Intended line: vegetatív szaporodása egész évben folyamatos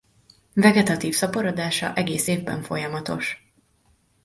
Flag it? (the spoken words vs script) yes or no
no